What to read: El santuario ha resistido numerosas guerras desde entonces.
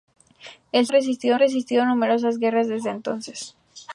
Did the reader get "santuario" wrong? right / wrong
wrong